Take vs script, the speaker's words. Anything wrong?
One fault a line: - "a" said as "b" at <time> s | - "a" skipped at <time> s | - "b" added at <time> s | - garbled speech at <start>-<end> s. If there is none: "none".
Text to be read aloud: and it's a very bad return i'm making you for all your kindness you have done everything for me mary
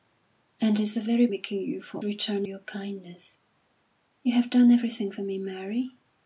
- "bad return i'm" skipped at 1.3 s
- "all" said as "return" at 2.0 s